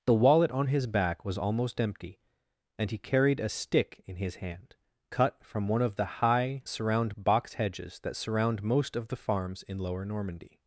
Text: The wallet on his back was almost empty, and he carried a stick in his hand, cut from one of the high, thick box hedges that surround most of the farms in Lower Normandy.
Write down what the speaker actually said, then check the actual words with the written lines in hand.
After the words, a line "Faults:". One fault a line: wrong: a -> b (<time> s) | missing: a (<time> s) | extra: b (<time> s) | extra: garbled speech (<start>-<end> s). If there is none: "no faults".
The wallet on his back was almost empty, and he carried a stick in his hand, cut from one of the high, surround box hedges that surround most of the farms in Lower Normandy.
Faults:
wrong: thick -> surround (6.7 s)